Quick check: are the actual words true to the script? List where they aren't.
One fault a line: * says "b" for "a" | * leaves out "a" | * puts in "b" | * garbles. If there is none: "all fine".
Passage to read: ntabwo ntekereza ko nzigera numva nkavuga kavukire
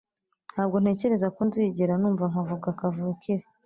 all fine